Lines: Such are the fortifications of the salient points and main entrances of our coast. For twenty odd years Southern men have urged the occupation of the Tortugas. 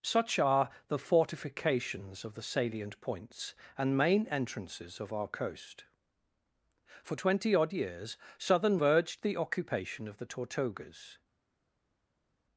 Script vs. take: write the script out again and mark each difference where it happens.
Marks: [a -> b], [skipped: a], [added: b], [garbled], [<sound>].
Such are the fortifications of the salient points and main entrances of our coast. For twenty odd years Southern [skipped: men have] urged the occupation of the Tortugas.